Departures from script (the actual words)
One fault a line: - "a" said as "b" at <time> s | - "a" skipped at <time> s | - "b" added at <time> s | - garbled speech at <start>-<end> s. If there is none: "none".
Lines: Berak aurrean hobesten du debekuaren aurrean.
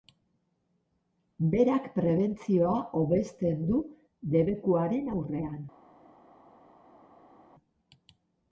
- "aurrean" said as "prebentzioa" at 2.0 s